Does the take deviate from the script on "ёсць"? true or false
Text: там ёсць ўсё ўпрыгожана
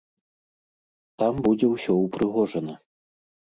true